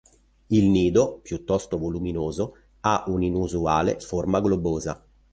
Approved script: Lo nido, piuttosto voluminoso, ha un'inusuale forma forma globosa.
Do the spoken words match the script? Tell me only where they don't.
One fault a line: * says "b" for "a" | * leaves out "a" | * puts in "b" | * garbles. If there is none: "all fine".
* says "Il" for "Lo"
* leaves out "forma"